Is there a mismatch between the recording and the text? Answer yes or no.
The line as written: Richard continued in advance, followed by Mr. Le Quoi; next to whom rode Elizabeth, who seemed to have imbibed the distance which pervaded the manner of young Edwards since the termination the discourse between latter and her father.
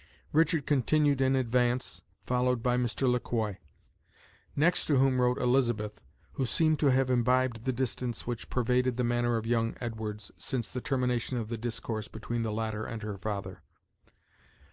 yes